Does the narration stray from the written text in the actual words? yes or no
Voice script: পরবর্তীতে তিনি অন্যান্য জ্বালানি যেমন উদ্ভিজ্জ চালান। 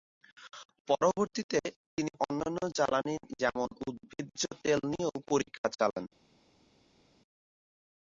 yes